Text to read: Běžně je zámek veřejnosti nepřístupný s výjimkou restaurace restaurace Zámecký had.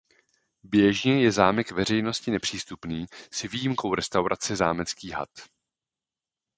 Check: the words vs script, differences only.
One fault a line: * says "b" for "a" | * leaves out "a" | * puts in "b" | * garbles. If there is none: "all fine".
* leaves out "restaurace"